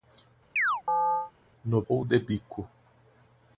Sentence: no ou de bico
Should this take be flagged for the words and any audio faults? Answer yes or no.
yes